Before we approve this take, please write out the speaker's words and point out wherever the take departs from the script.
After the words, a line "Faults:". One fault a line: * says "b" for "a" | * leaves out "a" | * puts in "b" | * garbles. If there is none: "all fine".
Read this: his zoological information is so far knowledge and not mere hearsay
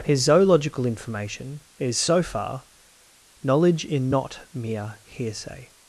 his zoological information is so far knowledge in not mere hearsay
Faults:
* says "in" for "and"